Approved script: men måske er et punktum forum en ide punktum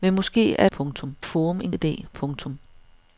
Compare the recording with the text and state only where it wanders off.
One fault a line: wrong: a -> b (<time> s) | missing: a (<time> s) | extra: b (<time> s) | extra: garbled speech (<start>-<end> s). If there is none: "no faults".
no faults